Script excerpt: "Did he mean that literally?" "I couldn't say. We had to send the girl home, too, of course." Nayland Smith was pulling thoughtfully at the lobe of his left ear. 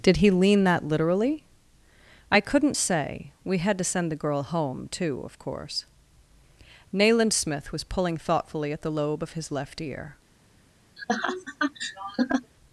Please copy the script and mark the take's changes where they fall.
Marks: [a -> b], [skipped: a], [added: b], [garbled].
"Did he [mean -> lean] that literally?" "I couldn't say. We had to send the girl home, too, of course." Nayland Smith was pulling thoughtfully at the lobe of his left ear.